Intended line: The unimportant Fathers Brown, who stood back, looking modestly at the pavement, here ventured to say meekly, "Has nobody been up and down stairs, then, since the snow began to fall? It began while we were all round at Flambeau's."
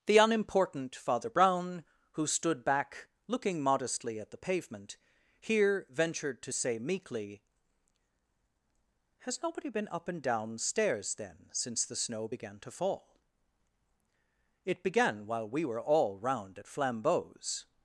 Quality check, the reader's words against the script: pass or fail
fail